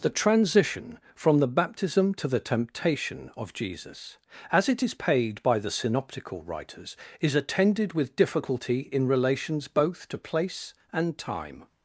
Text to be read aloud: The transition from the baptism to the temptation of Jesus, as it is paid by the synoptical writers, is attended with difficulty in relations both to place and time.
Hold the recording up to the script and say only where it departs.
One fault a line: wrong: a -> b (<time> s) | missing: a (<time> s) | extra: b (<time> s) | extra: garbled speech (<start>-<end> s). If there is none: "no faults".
no faults